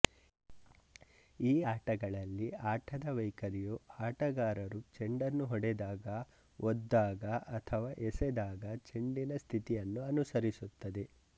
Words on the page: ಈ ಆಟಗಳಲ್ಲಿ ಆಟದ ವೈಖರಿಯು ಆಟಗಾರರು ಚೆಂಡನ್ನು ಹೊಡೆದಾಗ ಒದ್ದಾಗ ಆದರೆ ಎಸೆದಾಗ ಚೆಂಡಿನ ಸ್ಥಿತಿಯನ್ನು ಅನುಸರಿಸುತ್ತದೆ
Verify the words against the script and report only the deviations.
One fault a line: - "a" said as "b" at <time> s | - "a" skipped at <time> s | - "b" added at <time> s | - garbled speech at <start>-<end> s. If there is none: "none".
- "ಆದರೆ" said as "ಅಥವಾ" at 7.6 s